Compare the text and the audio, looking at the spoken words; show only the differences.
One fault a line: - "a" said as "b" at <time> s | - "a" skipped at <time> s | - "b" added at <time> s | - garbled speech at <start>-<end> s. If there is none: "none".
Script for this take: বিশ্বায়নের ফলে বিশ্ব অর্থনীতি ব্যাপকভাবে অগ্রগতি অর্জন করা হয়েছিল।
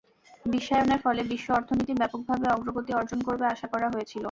- "করবে আশা" added at 3.3 s